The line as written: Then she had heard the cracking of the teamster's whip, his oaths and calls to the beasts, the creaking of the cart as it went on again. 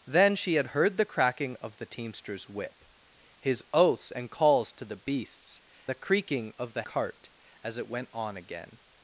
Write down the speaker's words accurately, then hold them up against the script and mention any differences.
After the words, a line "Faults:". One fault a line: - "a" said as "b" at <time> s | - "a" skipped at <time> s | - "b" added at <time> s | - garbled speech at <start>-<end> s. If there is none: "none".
Then she had heard the cracking of the teamster's whip, his oaths and calls to the beasts, the creaking of the cart as it went on again.
Faults:
none